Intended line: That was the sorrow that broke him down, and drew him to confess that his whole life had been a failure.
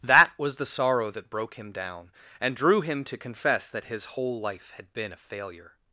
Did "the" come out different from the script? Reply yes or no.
no